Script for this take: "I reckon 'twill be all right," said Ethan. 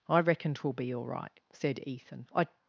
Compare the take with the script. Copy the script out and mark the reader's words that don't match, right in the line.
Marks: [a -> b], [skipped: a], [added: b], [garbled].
"I reckon 'twill be all right," said Ethan. [added: I]